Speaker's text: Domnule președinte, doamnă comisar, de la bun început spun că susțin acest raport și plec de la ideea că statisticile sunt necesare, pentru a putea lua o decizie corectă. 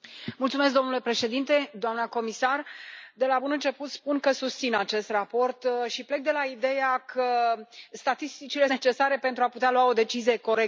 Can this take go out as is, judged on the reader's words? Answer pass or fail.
fail